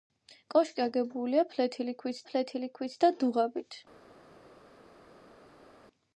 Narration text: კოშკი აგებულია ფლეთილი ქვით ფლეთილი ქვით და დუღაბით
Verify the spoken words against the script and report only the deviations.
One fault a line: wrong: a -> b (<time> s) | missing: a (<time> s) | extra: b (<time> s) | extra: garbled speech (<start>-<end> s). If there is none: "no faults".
no faults